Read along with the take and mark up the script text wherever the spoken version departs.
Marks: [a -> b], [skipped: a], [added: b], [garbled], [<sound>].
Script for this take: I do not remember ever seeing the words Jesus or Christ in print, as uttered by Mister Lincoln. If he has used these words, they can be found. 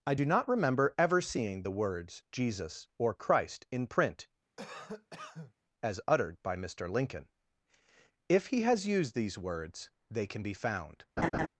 I do not remember ever seeing the words Jesus or Christ in print, [cough] as uttered by Mister Lincoln. If he has used these words, they can be found. [laugh]